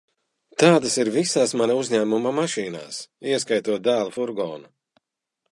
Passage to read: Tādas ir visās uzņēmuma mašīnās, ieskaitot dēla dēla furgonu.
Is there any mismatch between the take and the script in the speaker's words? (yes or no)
yes